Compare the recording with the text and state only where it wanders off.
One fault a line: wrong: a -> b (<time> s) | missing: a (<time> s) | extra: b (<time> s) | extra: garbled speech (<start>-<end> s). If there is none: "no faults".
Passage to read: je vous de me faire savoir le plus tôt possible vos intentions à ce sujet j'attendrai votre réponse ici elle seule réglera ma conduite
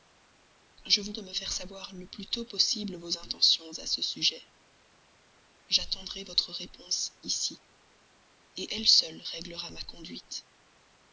no faults